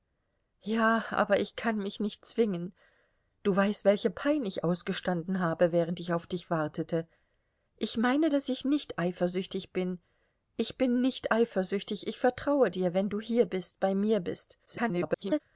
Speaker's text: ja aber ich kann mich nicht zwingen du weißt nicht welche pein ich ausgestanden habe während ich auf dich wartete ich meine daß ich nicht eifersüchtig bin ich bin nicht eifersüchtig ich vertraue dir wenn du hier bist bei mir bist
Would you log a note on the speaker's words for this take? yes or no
yes